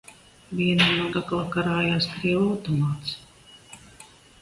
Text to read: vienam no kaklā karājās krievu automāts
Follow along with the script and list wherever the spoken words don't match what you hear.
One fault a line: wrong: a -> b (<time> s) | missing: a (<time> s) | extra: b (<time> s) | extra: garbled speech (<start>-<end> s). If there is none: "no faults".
no faults